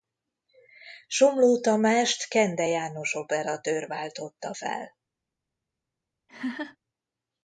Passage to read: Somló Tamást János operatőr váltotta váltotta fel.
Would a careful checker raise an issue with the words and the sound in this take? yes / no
yes